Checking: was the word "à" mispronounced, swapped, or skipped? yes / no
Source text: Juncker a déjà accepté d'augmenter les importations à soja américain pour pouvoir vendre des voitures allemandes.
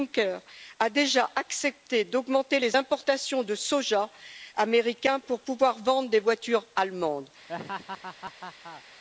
yes